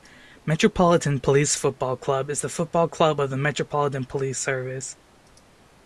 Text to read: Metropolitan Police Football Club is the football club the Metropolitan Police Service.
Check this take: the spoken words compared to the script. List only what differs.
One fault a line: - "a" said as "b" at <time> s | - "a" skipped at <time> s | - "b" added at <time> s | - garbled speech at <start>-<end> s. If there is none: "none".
- "of" added at 3.2 s